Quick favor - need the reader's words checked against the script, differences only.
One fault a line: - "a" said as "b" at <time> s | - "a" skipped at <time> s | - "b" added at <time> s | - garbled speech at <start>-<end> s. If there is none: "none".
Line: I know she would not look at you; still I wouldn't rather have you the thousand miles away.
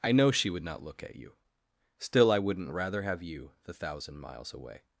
none